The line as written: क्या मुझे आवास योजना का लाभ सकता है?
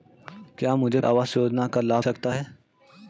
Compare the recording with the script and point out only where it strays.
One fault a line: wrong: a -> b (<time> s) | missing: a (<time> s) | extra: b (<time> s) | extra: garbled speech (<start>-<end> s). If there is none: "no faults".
no faults